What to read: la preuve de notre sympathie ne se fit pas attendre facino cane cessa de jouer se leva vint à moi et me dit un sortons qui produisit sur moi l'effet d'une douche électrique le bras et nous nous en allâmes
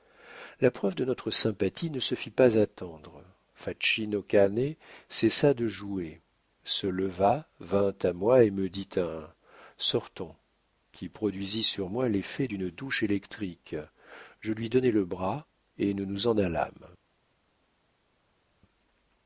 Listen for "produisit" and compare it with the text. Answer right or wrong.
right